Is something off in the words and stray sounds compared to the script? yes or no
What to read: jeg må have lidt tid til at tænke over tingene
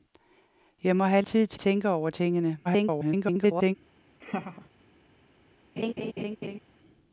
yes